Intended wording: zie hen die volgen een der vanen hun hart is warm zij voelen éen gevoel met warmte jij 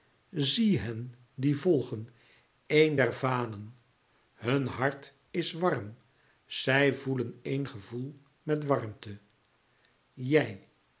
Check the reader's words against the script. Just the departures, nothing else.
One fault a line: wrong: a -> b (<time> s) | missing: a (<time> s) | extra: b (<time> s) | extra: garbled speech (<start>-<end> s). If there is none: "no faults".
no faults